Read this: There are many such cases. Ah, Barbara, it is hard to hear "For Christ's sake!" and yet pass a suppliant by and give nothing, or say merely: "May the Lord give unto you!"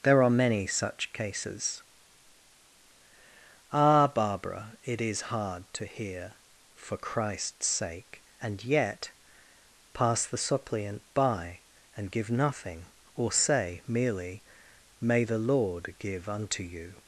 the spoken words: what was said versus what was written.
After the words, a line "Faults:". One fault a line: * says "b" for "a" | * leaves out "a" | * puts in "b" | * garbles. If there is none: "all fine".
There are many such cases. Ah, Barbara, it is hard to hear "For Christ's sake!" and yet pass the suppliant by and give nothing, or say merely: "May the Lord give unto you!"
Faults:
* says "the" for "a"